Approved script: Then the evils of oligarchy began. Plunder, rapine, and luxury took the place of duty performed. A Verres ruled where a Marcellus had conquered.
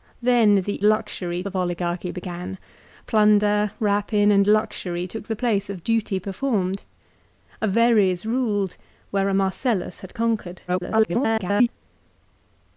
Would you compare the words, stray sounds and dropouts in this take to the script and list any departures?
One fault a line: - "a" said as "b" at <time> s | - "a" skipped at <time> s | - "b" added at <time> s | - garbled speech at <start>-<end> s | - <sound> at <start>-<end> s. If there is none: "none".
- "evils" said as "luxury" at 0.8 s
- garbled speech at 10.7-11.7 s